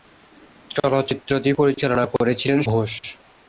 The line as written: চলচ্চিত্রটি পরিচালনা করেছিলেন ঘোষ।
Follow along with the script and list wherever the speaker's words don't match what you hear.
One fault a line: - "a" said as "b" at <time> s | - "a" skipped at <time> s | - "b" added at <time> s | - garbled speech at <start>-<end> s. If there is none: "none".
none